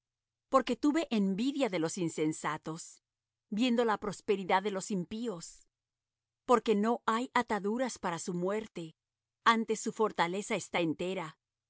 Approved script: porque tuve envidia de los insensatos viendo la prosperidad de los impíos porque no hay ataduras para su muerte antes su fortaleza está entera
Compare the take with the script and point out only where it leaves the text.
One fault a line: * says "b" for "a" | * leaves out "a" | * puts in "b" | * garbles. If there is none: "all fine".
all fine